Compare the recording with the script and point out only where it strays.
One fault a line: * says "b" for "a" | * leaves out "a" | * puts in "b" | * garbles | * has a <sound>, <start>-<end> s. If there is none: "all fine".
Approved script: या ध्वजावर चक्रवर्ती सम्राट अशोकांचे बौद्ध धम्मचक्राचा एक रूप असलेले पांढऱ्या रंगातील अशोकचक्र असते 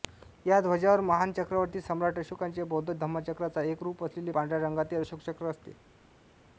* puts in "महान"